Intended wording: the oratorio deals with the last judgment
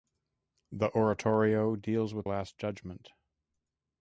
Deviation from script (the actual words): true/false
true